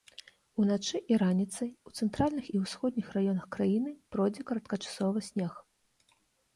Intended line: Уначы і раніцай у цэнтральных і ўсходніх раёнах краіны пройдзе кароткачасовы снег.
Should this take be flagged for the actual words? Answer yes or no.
no